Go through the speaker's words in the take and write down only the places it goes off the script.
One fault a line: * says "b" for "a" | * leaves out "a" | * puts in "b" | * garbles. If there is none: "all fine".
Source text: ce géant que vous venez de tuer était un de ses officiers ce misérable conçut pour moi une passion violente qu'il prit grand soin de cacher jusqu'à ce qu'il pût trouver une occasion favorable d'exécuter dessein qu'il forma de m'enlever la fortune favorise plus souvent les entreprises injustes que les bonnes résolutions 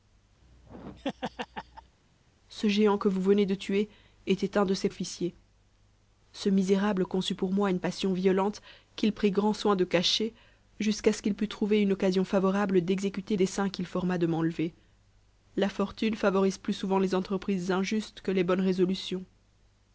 all fine